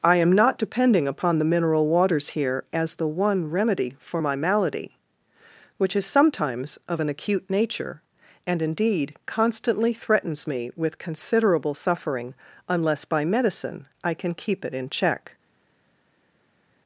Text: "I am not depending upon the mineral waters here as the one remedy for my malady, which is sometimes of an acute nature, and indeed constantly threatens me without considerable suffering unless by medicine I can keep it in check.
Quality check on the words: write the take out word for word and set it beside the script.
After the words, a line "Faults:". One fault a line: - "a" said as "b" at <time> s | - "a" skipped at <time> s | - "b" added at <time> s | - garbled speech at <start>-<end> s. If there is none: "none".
"I am not depending upon the mineral waters here as the one remedy for my malady, which is sometimes of an acute nature, and indeed constantly threatens me with considerable suffering unless by medicine I can keep it in check.
Faults:
- "without" said as "with" at 10.8 s